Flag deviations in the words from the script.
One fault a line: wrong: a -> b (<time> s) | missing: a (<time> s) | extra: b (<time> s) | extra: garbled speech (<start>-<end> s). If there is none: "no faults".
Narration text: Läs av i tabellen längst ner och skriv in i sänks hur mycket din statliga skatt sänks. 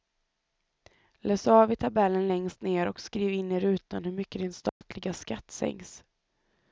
wrong: sänks -> rutan (3.6 s)